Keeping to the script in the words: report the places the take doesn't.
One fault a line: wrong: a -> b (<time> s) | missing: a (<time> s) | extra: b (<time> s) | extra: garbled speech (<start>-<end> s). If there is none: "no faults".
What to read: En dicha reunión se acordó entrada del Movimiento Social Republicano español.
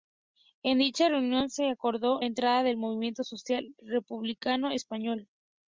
no faults